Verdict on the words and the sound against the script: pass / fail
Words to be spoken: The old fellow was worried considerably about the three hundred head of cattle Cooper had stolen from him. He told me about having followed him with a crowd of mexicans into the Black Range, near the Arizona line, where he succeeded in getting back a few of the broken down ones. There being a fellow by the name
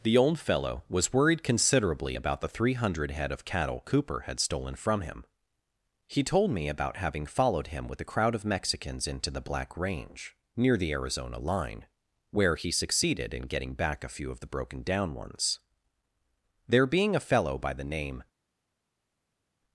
pass